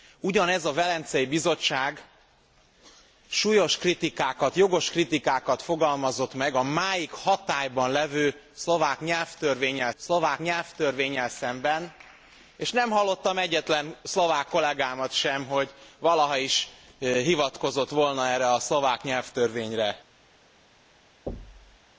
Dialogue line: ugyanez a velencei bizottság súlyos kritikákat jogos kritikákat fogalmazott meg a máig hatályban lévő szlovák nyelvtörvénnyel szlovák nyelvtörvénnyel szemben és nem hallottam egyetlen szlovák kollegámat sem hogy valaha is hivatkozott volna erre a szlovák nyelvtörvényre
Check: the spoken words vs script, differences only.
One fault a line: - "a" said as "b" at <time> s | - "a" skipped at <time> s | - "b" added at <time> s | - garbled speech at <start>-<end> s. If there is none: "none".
none